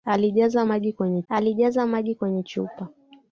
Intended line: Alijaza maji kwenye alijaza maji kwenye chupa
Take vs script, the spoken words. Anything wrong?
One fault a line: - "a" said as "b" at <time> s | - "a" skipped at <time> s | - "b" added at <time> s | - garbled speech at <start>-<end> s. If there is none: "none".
none